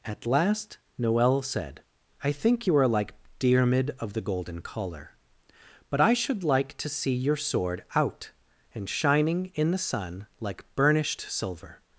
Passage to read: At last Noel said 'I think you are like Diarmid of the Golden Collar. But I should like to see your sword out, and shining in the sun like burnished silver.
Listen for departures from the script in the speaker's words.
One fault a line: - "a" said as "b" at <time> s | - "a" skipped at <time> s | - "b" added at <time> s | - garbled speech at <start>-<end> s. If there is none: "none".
none